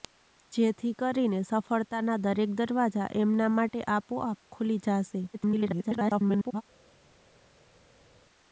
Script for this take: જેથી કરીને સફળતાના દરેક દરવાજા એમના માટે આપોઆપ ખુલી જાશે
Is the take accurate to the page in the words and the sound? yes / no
no